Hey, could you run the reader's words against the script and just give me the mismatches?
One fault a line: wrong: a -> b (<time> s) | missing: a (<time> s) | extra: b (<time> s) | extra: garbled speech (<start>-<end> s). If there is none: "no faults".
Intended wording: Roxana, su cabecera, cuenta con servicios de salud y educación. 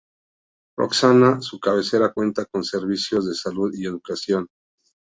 no faults